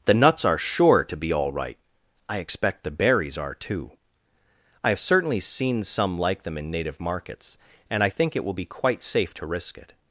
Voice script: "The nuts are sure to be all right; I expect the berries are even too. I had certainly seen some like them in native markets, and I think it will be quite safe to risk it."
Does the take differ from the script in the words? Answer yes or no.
yes